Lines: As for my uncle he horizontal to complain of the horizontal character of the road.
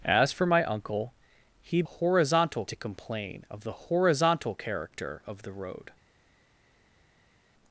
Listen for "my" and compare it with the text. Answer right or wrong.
right